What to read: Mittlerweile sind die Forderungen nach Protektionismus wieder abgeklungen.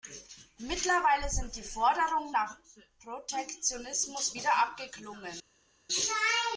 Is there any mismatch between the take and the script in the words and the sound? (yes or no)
no